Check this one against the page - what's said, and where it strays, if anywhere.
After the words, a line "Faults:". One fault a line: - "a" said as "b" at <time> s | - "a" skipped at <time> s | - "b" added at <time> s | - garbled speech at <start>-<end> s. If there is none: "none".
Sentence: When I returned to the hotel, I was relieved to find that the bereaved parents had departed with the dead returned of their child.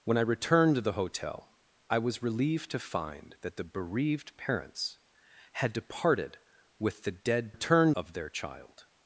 When I returned to the hotel, I was relieved to find that the bereaved parents had departed with the dead returned of their child.
Faults:
none